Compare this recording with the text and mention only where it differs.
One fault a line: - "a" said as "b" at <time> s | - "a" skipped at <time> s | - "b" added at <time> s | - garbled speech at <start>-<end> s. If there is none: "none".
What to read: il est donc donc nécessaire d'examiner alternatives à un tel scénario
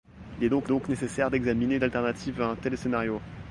none